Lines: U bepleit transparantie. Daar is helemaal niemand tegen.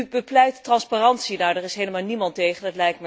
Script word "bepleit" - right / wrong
right